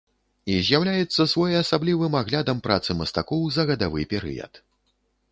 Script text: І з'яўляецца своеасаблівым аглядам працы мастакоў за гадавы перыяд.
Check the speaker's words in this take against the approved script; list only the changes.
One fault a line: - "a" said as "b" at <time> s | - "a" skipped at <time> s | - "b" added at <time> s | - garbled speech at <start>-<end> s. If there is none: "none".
none